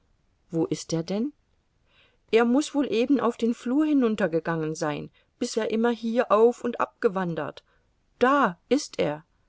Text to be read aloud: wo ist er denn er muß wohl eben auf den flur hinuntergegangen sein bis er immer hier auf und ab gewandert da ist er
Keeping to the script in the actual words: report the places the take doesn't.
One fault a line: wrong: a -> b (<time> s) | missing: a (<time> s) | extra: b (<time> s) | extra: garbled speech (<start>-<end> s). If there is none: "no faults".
no faults